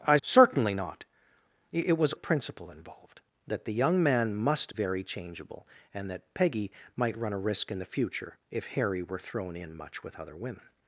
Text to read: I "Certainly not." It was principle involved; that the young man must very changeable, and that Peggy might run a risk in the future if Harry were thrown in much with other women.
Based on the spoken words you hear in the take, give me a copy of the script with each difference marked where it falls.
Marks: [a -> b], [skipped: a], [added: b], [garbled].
I "Certainly not." It was principle involved; that the young man must very changeable, and that Peggy might run a risk in the future if Harry were thrown in much with other women.